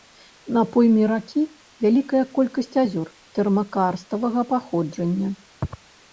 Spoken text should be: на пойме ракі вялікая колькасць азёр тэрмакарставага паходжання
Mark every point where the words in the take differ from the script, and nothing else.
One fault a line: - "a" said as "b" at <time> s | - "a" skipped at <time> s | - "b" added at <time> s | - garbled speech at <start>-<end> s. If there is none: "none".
none